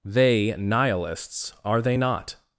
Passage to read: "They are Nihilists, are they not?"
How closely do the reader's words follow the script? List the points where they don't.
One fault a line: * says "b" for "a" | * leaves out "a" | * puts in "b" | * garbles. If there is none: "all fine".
* leaves out "are"